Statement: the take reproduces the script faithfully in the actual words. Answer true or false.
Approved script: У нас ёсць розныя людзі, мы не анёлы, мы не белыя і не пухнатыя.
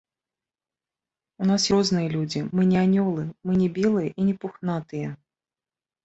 false